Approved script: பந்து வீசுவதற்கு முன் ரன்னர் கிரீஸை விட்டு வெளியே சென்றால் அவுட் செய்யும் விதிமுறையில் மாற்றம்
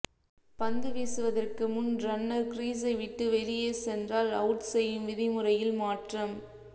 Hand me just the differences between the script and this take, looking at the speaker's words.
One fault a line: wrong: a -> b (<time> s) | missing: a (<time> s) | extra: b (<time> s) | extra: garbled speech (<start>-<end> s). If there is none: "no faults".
no faults